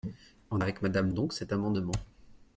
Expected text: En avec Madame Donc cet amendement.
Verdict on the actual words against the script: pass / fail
pass